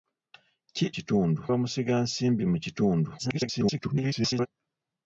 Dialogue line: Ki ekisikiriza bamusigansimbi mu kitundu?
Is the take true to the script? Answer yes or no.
no